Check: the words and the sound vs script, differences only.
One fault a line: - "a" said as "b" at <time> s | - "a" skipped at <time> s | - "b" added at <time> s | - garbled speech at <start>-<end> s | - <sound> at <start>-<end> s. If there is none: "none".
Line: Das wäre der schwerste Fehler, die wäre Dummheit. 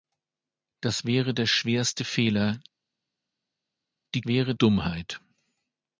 none